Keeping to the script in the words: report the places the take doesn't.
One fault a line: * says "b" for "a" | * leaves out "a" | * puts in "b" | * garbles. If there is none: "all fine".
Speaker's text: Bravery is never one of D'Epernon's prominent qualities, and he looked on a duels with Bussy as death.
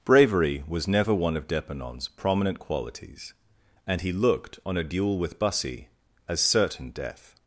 * says "was" for "is"
* says "duel" for "duels"
* puts in "certain"